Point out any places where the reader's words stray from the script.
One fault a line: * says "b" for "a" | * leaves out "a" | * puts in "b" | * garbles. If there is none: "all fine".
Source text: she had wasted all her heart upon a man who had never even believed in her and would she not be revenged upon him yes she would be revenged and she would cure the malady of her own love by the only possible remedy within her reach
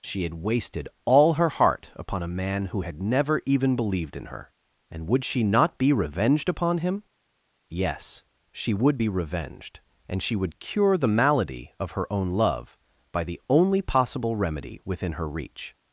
all fine